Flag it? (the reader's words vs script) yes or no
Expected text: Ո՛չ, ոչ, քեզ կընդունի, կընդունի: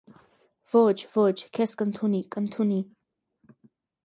no